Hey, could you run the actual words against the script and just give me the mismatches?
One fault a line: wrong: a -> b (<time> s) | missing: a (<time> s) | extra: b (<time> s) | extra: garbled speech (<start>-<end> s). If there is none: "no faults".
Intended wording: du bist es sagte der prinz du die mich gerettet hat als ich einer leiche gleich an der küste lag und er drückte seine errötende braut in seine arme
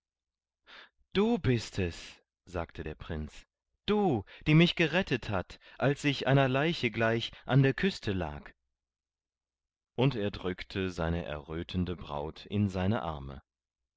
no faults